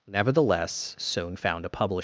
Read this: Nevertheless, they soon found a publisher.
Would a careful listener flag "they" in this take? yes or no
yes